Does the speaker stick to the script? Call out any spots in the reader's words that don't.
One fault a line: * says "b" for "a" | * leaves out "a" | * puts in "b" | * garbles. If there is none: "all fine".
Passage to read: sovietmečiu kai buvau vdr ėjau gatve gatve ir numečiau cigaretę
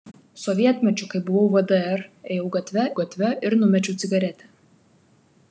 all fine